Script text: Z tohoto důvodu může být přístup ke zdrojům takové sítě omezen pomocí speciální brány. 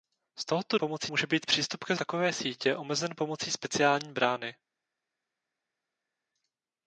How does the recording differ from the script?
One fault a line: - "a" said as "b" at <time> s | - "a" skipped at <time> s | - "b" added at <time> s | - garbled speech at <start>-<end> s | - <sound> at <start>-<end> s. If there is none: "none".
- "důvodu" said as "pomocí" at 0.8 s
- "zdrojům" skipped at 2.0 s